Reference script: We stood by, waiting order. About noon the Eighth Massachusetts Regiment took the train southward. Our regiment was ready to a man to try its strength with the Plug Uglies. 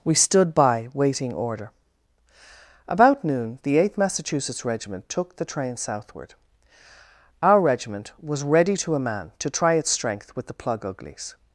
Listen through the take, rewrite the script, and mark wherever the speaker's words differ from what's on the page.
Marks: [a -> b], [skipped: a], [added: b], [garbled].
We stood by, waiting order. About noon the Eighth Massachusetts Regiment took the train southward. Our regiment was ready to a man to try its strength with the Plug Uglies.